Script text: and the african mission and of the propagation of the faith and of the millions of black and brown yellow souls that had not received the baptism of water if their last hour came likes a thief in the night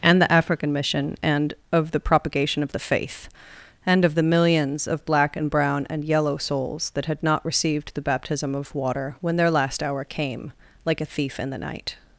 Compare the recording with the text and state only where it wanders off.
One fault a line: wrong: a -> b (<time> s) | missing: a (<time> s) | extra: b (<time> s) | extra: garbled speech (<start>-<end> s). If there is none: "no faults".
extra: and (5.9 s)
wrong: if -> when (9.2 s)
wrong: likes -> like (10.8 s)